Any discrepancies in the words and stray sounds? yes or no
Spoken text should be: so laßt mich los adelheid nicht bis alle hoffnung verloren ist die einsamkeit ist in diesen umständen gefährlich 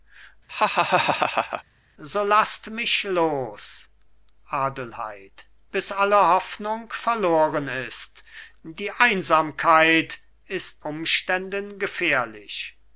yes